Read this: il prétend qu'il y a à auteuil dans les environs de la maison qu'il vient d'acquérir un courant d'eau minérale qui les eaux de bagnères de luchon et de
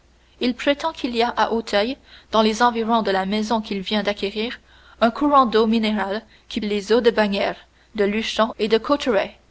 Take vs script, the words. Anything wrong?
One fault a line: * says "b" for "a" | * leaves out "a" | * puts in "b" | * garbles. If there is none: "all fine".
all fine